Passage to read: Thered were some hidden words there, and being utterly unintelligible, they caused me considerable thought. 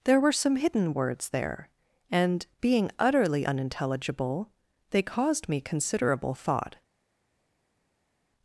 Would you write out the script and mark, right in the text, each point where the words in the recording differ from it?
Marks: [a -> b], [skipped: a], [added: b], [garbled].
[Thered -> There] were some hidden words there, and being utterly unintelligible, they caused me considerable thought.